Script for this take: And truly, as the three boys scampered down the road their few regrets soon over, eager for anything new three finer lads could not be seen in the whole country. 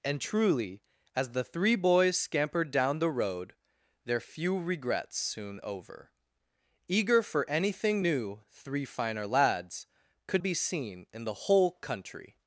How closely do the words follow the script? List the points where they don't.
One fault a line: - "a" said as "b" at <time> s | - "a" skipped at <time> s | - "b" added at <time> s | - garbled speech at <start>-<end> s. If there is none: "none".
- "not" skipped at 10.4 s